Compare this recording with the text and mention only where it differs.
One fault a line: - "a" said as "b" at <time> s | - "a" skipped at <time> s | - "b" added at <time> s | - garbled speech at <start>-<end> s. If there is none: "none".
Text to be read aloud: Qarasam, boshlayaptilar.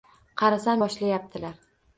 none